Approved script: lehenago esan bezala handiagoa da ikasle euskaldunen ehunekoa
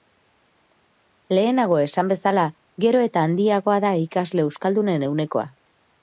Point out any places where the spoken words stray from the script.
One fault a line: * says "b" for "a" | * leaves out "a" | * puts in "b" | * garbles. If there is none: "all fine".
* puts in "gero eta"